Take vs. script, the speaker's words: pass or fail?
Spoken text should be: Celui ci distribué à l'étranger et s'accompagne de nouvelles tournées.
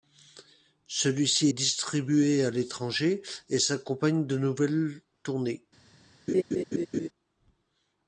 pass